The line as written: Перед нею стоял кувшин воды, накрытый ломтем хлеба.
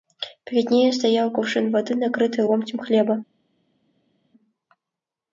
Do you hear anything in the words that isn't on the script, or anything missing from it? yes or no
no